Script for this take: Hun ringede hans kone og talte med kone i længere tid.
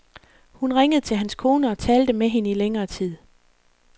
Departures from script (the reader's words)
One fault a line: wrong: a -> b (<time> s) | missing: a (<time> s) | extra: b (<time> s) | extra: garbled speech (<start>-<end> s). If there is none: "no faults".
extra: til (1.0 s)
wrong: kone -> hende (2.3 s)